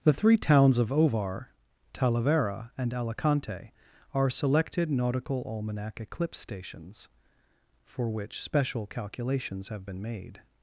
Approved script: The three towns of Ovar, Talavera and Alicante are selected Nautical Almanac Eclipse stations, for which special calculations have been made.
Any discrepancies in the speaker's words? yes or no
no